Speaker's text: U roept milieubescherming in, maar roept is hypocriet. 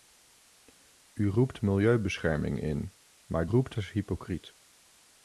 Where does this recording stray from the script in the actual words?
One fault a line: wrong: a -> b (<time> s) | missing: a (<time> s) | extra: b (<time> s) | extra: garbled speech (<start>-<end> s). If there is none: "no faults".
no faults